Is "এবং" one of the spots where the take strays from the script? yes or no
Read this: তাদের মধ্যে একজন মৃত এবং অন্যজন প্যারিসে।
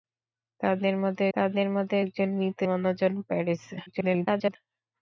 yes